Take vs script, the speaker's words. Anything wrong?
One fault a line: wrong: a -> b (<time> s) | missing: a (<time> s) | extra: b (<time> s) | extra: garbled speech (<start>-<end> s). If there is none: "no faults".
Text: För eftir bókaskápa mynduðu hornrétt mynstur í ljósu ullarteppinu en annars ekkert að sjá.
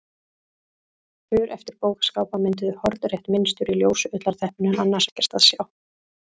no faults